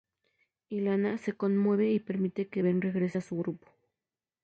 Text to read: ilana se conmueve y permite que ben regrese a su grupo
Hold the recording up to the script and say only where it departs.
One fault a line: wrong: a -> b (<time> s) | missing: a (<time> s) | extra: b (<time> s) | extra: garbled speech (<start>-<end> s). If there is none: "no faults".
no faults